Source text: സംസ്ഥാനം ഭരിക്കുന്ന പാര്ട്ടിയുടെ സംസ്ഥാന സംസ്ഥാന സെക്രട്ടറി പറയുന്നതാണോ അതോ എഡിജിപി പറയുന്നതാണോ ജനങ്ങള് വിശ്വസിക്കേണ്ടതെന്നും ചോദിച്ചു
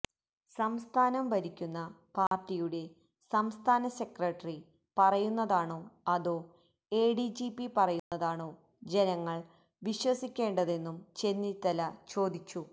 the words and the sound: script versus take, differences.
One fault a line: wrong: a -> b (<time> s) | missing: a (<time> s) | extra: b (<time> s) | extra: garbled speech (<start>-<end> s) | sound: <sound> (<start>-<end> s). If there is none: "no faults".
sound: dropout (2.3-2.3 s)
missing: സംസ്ഥാന (3.9 s)
sound: dropout (8.0-8.1 s)
extra: ചെന്നിത്തല (11.2 s)